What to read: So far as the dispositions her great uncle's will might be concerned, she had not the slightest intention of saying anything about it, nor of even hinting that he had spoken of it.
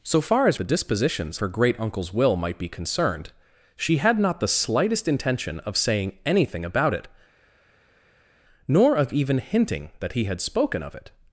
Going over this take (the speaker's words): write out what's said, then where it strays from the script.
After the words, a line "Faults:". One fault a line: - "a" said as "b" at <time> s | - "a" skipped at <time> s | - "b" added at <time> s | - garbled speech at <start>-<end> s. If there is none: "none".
So far as the dispositions her great uncle's will might be concerned, she had not the slightest intention of saying anything about it, nor of even hinting that he had spoken of it.
Faults:
none